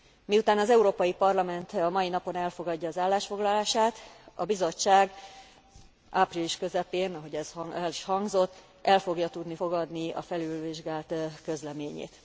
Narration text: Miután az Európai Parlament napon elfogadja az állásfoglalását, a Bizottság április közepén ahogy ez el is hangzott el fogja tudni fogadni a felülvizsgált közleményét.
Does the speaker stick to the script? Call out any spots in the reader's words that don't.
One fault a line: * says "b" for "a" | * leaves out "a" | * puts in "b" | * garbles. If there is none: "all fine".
* puts in "a mai"